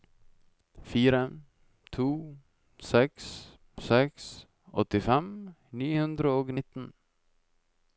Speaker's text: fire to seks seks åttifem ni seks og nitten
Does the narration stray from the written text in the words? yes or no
yes